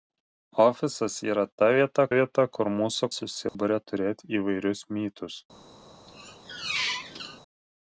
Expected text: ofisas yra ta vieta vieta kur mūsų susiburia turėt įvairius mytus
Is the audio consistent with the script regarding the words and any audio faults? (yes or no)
no